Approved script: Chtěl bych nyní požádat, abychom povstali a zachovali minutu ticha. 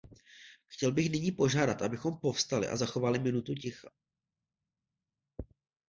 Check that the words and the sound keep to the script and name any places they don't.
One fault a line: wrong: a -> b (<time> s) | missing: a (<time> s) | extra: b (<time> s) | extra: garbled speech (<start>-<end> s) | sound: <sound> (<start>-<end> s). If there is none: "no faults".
no faults